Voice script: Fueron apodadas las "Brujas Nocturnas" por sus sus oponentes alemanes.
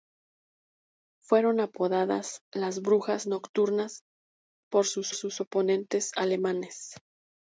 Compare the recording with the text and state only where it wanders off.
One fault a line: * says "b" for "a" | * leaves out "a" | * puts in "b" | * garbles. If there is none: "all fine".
all fine